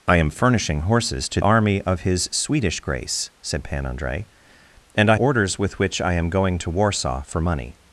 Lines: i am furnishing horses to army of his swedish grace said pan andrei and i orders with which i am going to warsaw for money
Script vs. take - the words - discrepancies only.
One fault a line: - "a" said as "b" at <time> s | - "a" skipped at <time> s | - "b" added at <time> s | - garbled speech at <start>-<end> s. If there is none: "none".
none